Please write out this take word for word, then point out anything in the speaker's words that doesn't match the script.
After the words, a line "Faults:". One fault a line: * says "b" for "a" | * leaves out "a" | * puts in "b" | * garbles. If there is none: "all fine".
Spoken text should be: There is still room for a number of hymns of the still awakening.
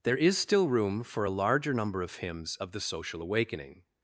There is still room for a larger number of hymns of the social awakening.
Faults:
* puts in "larger"
* says "social" for "still"